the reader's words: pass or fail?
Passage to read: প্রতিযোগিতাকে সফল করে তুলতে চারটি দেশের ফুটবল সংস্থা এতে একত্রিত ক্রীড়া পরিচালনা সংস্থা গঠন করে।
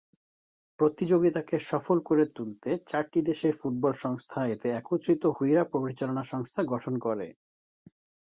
pass